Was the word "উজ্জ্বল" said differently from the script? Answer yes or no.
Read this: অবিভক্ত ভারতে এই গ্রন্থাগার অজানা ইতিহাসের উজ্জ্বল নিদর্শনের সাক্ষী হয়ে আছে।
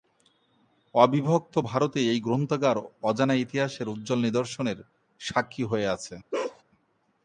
no